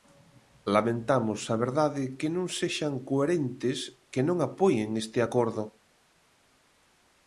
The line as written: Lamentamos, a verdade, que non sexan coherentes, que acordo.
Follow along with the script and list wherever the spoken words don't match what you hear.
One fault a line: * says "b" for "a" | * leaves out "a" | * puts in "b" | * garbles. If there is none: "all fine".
* puts in "non apoien este"